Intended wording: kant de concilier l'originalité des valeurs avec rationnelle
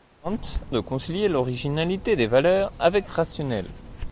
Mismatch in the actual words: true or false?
false